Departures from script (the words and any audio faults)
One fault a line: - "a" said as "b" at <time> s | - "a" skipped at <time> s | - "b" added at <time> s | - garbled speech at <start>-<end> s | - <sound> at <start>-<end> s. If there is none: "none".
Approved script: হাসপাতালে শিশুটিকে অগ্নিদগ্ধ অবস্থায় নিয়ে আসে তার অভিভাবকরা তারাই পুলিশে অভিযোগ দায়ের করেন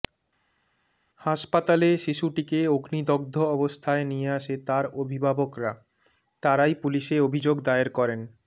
none